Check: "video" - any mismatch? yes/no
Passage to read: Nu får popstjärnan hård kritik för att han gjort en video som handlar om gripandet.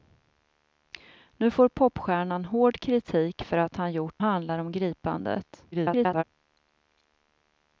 yes